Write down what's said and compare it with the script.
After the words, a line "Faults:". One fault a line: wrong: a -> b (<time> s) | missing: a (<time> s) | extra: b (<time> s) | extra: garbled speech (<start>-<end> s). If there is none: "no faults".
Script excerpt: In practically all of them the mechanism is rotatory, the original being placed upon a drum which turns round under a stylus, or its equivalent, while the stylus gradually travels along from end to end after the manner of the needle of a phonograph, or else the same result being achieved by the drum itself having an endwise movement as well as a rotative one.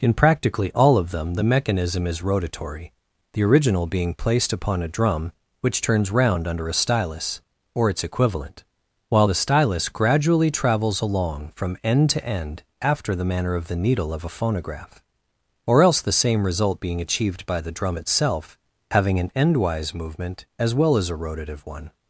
In practically all of them the mechanism is rotatory, the original being placed upon a drum which turns round under a stylus, or its equivalent, while the stylus gradually travels along from end to end after the manner of the needle of a phonograph, or else the same result being achieved by the drum itself having an endwise movement as well as a rotative one.
Faults:
no faults